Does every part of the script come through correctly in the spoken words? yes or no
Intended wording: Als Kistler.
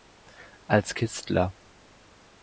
yes